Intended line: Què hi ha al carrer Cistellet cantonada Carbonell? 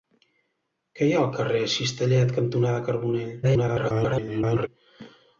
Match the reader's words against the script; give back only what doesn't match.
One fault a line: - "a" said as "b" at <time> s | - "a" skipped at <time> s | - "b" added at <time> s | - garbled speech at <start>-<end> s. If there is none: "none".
- garbled speech at 3.4-4.7 s